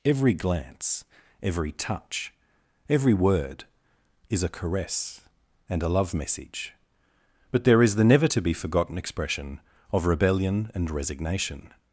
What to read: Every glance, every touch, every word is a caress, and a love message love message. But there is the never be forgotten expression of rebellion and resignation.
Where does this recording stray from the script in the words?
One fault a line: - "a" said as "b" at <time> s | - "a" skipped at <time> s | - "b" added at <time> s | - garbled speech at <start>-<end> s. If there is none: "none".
- "love message" skipped at 6.7 s
- "to" added at 8.3 s